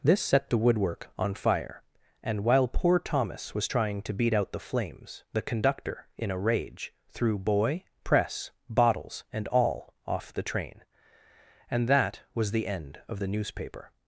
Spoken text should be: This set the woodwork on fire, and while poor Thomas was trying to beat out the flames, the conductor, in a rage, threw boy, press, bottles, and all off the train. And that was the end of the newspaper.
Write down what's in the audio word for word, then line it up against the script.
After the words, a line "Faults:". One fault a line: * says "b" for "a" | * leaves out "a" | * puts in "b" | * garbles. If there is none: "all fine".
This set the woodwork on fire, and while poor Thomas was trying to beat out the flames, the conductor, in a rage, threw boy, press, bottles, and all off the train. And that was the end of the newspaper.
Faults:
all fine